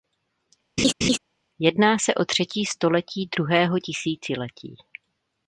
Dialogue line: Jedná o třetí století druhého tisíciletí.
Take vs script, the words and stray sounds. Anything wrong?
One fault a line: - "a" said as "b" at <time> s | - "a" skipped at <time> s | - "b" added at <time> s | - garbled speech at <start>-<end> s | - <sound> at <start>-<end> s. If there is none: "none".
- laugh at 0.8-1.2 s
- "se" added at 2.0 s